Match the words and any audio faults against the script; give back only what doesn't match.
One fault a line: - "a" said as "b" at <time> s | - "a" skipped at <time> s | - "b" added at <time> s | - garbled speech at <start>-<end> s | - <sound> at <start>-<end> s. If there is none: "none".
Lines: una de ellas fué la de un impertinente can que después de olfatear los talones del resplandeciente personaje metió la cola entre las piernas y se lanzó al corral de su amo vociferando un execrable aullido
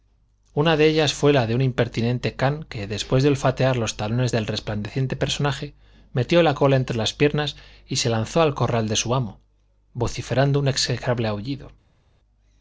none